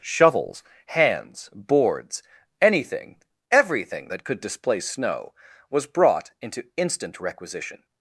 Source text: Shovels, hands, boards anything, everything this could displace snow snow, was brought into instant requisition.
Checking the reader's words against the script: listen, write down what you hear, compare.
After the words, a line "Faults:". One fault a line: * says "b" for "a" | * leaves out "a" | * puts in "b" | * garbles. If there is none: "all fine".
Shovels, hands, boards anything, everything that could displace snow, was brought into instant requisition.
Faults:
* says "that" for "this"
* leaves out "snow"